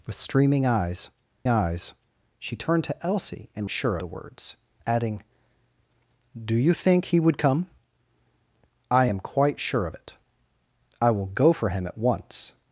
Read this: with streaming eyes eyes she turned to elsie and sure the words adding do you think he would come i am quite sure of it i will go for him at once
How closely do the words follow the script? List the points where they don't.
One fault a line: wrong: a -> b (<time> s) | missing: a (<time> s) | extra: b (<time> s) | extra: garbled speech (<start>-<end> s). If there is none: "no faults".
no faults